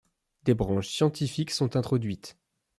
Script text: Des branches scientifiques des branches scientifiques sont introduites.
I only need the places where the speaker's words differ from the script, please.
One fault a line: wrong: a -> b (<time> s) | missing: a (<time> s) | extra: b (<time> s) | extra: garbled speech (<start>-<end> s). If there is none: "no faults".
missing: des branches scientifiques (1.5 s)